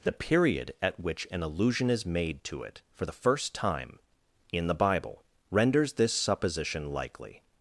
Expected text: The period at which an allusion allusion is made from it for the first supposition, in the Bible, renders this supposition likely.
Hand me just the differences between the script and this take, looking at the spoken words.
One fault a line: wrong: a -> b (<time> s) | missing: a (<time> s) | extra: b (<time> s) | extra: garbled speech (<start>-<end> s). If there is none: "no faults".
missing: allusion (1.9 s)
wrong: from -> to (2.5 s)
wrong: supposition -> time (3.5 s)